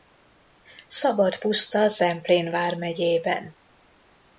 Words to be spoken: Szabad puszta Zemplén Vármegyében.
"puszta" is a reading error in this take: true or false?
false